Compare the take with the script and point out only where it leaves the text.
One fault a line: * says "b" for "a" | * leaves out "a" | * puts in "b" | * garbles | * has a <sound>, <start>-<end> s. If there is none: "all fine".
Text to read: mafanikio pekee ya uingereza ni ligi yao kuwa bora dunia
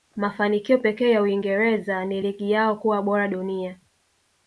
all fine